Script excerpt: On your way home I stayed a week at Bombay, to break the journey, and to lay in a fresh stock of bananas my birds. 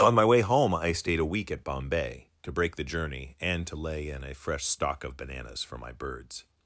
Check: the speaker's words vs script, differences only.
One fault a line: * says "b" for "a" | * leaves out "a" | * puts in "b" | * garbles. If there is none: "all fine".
* says "my" for "your"
* puts in "for"